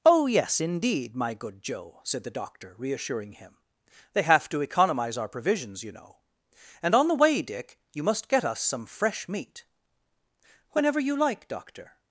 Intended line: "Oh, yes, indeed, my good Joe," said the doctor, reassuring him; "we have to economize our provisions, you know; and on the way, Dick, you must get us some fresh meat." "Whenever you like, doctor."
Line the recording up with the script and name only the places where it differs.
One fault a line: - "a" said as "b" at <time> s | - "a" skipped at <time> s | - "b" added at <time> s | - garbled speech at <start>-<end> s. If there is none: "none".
- "we" said as "they" at 4.1 s